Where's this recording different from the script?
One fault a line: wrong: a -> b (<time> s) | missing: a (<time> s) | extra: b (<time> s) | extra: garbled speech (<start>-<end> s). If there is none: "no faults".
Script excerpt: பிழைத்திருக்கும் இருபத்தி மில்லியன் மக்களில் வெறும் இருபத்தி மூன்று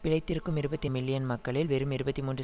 no faults